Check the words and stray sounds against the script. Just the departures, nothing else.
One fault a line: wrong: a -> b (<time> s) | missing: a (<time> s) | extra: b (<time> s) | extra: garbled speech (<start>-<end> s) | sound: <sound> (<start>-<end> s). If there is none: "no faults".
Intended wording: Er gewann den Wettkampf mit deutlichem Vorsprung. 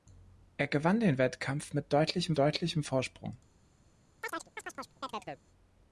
extra: deutlichem (2.4 s)
sound: chirp (4.2-5.4 s)